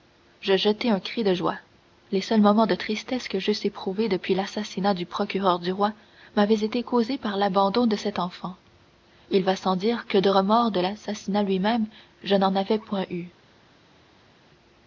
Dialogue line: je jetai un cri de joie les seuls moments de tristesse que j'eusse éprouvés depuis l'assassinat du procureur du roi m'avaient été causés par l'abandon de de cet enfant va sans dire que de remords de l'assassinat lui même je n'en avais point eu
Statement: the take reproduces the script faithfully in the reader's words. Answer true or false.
false